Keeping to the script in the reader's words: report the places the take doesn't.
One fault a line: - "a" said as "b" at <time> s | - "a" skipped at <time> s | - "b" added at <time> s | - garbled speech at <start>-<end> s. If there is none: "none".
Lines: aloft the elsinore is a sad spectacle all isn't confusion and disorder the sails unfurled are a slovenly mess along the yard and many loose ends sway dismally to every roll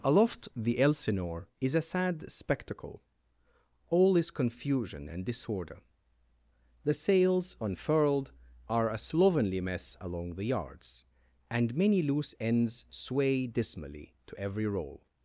- "isn't" said as "is" at 4.2 s
- "yard" said as "yards" at 10.4 s